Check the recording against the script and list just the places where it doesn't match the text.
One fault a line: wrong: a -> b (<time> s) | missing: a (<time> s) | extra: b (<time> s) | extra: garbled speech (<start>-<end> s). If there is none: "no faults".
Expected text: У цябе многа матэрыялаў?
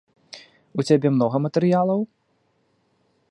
no faults